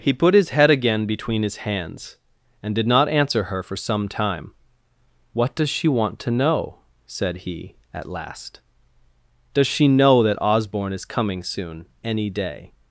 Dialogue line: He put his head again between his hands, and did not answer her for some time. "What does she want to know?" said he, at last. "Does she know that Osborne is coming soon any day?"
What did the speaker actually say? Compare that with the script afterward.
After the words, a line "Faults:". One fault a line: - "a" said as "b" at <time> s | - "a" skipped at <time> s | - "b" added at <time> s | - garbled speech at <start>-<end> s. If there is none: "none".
He put his head again between his hands, and did not answer her for some time. "What does she want to know?" said he, at last. "Does she know that Osborne is coming soon any day?"
Faults:
none